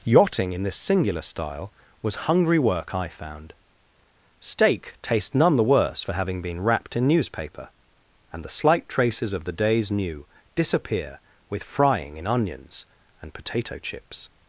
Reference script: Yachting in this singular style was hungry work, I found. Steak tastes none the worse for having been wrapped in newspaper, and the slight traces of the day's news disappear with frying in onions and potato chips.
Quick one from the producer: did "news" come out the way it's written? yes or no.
no